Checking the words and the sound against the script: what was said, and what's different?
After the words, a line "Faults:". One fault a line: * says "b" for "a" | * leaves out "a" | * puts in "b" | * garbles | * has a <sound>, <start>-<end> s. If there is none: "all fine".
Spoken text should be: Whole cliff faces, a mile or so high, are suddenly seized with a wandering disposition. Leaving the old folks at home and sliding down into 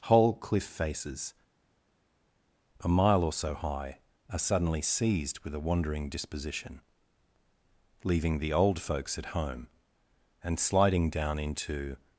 Whole cliff faces, a mile or so high, are suddenly seized with a wandering disposition. Leaving the old folks at home and sliding down into
Faults:
all fine